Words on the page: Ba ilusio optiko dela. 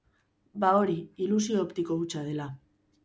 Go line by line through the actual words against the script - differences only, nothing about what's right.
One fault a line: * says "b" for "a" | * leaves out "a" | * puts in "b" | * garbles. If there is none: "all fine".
* puts in "hori"
* puts in "hutsa"